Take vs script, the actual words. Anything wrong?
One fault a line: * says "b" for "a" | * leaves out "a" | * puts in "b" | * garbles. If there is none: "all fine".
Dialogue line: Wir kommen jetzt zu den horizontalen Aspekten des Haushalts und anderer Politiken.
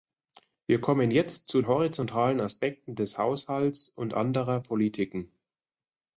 * leaves out "den"